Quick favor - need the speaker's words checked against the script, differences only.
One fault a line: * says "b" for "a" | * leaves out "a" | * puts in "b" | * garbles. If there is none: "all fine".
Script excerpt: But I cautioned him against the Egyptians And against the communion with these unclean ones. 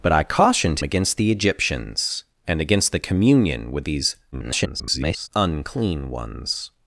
* leaves out "him"
* garbles